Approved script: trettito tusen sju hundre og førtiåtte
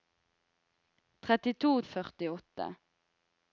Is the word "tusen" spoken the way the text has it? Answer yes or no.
no